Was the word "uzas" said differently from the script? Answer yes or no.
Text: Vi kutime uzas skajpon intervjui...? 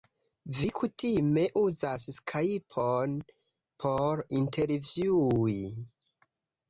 no